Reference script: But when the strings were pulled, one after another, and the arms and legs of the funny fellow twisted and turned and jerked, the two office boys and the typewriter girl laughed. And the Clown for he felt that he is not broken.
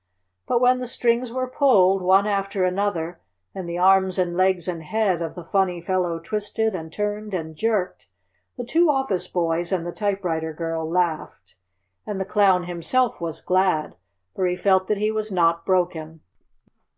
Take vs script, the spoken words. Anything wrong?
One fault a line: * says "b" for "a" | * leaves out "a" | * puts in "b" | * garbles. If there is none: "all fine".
* puts in "and head"
* puts in "himself was glad"
* says "was" for "is"